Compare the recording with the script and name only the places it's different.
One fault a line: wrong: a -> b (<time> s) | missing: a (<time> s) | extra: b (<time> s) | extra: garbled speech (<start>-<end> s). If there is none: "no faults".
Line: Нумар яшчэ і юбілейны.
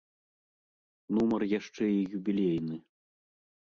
no faults